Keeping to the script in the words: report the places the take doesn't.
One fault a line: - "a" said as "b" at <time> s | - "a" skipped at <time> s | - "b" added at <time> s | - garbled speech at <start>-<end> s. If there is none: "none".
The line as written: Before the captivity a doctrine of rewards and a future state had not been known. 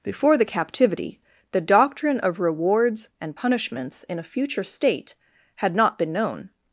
- "a" said as "the" at 1.5 s
- "punishments in" added at 3.3 s